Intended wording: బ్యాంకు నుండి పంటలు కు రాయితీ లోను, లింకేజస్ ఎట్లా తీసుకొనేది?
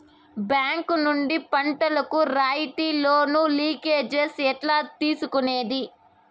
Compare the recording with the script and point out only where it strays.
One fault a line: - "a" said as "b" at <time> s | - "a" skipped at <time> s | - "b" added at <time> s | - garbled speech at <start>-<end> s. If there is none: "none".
none